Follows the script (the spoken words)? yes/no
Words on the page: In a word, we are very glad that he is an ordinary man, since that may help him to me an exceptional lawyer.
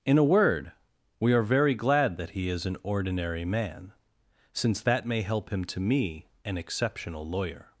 yes